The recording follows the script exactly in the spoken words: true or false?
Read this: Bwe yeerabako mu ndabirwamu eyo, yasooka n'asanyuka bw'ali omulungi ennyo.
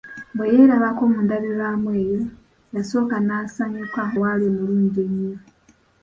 true